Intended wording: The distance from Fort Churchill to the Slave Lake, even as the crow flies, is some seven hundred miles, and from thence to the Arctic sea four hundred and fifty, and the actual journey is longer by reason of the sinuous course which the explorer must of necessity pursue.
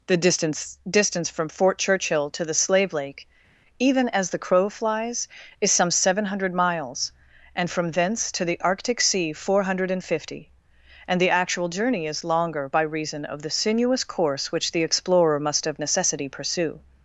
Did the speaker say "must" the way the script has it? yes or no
yes